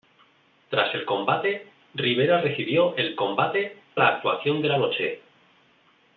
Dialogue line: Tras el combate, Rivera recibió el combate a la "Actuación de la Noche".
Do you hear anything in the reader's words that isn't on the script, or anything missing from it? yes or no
no